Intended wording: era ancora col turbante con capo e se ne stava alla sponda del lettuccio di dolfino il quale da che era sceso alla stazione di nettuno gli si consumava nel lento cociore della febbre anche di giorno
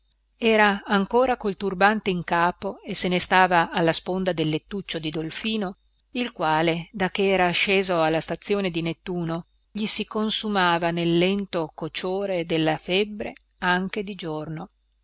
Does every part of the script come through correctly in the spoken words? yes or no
no